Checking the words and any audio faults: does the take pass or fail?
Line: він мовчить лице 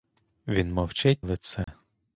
fail